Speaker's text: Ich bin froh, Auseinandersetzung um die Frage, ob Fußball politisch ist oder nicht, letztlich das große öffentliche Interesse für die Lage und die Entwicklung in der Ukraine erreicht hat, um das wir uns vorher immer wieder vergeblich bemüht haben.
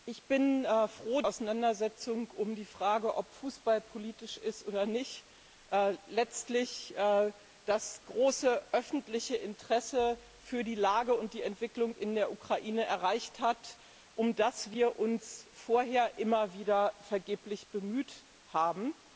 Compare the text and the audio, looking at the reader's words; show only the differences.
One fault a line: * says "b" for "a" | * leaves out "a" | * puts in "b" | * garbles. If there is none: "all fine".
all fine